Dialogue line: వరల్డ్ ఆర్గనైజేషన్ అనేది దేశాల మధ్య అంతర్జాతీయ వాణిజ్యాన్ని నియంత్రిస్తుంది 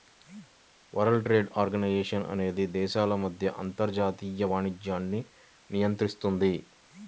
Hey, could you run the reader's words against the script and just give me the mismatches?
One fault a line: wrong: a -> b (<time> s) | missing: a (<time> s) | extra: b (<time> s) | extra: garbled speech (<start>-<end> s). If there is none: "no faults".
extra: ట్రేడ్ (1.2 s)